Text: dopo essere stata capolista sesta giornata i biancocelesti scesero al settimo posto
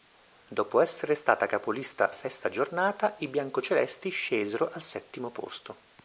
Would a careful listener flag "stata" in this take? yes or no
no